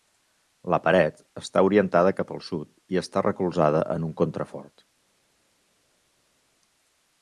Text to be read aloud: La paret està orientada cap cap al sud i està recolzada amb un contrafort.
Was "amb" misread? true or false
true